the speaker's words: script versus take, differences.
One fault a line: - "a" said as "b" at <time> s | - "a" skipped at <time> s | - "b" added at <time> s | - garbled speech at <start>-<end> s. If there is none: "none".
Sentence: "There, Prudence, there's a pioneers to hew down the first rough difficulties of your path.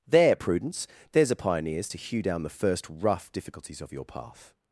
none